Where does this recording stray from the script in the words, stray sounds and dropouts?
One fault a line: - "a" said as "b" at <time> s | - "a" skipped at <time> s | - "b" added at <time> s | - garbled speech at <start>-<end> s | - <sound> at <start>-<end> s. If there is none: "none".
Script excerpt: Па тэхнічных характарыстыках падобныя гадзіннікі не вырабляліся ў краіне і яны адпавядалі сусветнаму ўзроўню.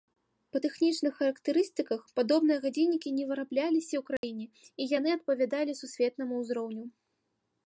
- dropout at 4.2-4.2 s